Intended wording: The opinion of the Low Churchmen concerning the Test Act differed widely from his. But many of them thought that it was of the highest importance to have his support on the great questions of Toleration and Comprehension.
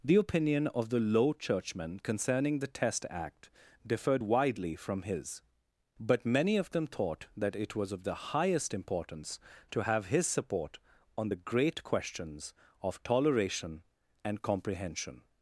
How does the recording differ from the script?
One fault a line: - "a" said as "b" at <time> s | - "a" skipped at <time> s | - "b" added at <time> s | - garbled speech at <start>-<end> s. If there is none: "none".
none